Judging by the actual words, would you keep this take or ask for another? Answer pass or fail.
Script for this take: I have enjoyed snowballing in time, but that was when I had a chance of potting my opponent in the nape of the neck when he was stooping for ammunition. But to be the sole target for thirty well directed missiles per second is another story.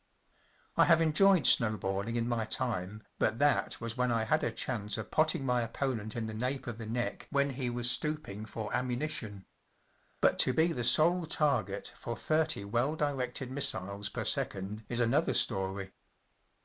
fail